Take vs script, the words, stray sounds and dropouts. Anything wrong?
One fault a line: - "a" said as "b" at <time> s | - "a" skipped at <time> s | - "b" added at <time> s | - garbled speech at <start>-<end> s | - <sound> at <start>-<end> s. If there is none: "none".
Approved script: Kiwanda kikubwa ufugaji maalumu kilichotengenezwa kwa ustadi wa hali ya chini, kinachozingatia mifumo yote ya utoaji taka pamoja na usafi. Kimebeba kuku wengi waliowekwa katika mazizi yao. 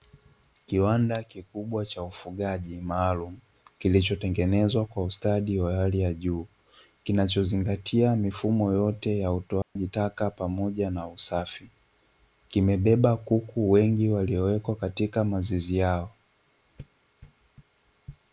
- "cha" added at 1.9 s
- "chini" said as "juu" at 6.1 s
- dropout at 9.6-9.8 s